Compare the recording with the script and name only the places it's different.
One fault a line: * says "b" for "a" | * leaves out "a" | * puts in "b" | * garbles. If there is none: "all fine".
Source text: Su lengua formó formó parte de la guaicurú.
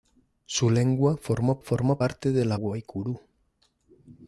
all fine